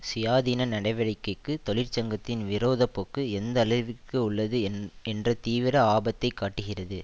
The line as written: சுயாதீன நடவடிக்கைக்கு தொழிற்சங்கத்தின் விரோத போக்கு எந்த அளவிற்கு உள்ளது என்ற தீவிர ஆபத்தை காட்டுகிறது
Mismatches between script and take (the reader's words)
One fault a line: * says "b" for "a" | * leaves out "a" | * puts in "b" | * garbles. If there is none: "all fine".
all fine